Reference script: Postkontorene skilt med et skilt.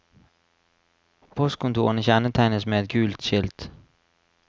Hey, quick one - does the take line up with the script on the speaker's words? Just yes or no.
no